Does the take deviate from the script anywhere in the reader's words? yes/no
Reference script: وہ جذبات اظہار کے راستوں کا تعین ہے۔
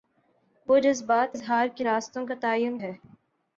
no